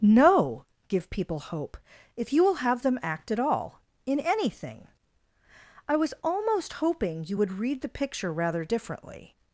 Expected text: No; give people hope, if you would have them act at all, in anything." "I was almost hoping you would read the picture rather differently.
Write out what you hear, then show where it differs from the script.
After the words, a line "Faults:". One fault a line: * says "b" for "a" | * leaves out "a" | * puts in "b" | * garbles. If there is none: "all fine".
No; give people hope, if you will have them act at all, in anything." "I was almost hoping you would read the picture rather differently.
Faults:
* says "will" for "would"